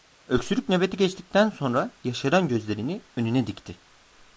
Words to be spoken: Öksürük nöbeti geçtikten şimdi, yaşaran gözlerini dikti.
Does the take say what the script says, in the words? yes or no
no